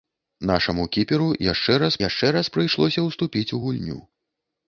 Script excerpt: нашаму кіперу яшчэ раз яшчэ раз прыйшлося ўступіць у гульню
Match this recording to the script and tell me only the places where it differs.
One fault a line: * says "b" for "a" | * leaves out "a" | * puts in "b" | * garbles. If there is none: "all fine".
all fine